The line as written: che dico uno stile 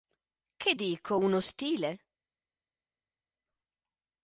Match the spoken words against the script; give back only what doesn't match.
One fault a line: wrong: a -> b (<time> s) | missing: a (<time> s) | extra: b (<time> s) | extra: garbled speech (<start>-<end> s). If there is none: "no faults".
no faults